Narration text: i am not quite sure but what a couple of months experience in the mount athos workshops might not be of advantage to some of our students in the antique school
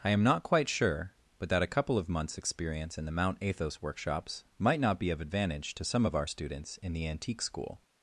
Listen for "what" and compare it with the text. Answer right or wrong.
wrong